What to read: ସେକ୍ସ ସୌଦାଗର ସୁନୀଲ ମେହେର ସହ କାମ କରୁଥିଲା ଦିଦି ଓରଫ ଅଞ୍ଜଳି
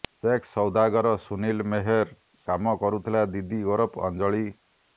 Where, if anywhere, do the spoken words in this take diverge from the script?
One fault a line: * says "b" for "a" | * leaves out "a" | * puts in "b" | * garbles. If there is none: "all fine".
* leaves out "ସହ"